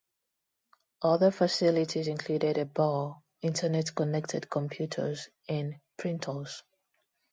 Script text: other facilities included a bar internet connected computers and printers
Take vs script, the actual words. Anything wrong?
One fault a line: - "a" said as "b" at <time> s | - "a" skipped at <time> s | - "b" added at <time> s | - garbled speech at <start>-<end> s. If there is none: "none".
none